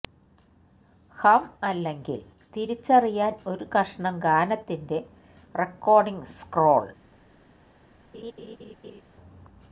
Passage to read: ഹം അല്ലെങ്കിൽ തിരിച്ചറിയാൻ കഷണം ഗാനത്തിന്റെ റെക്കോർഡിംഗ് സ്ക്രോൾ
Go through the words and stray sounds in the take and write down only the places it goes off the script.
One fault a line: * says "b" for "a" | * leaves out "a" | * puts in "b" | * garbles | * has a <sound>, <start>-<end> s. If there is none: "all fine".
* puts in "ഒരു"
* has a laugh, 8.1-9.0 s